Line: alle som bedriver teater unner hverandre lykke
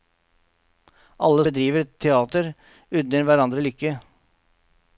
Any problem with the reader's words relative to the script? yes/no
yes